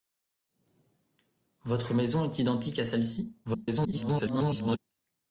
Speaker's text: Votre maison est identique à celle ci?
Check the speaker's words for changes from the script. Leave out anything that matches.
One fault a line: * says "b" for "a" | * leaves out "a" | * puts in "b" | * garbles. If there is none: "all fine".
* garbles